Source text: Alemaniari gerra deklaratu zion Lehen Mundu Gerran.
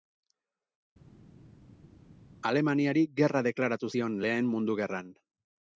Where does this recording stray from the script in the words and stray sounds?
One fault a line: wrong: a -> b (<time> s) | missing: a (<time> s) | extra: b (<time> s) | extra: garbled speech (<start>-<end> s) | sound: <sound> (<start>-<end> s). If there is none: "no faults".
no faults